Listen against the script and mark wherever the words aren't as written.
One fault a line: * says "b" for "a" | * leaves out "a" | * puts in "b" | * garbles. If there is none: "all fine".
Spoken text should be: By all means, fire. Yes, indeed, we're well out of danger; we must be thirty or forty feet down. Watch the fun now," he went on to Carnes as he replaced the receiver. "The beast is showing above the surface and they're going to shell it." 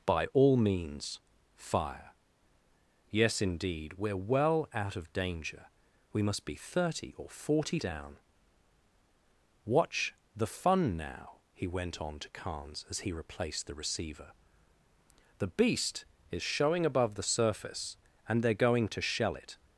* leaves out "feet"